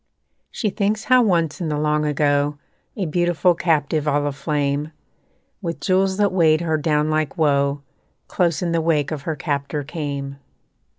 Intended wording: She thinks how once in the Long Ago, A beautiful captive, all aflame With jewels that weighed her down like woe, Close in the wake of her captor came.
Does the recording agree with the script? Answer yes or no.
yes